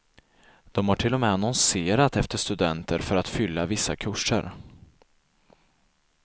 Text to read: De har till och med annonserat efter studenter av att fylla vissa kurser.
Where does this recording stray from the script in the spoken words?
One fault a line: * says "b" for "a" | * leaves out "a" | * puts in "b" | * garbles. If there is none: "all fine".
* says "för" for "av"